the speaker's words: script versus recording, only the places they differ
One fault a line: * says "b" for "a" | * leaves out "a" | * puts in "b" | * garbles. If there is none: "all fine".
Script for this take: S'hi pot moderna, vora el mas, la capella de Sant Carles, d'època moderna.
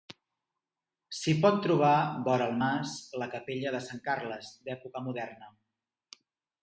* says "trobar" for "moderna"